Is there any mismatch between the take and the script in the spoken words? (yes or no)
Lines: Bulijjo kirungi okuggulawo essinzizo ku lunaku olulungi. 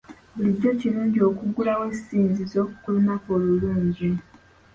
no